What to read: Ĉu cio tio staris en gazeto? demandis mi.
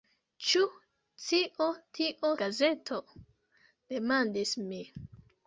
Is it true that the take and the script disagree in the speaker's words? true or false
true